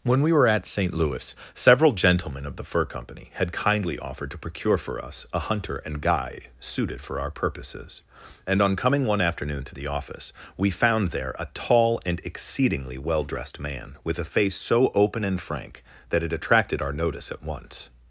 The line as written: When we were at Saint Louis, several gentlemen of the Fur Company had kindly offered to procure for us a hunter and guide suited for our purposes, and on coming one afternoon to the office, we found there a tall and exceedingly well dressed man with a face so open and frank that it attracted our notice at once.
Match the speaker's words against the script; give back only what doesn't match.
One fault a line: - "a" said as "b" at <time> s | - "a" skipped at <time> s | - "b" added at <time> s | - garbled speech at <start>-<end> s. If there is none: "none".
none